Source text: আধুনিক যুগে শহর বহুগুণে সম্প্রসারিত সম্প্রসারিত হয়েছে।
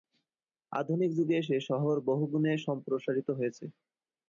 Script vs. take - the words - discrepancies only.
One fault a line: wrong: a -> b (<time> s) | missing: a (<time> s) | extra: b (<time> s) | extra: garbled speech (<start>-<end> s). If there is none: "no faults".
extra: এসে (1.4 s)
missing: সম্প্রসারিত (3.3 s)